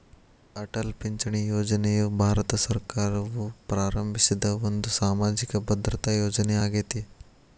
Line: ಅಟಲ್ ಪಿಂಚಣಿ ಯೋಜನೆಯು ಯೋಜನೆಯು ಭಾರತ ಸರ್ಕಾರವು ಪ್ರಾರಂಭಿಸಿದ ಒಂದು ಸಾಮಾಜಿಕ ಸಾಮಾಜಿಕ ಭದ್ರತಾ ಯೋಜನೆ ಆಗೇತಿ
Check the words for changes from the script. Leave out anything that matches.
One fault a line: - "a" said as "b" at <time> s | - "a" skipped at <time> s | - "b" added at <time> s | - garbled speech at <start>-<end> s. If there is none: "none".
- "ಯೋಜನೆಯು" skipped at 2.0 s
- "ಸಾಮಾಜಿಕ" skipped at 5.6 s